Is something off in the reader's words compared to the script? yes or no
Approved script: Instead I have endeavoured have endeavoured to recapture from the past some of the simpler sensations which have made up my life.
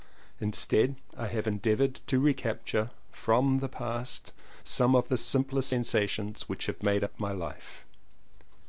yes